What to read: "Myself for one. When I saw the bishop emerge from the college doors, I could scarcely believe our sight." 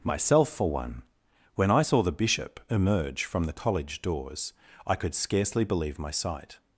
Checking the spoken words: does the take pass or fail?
fail